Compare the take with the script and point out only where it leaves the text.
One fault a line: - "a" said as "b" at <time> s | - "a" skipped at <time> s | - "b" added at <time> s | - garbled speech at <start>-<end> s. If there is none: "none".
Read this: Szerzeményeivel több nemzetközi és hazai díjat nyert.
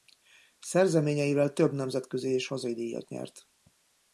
none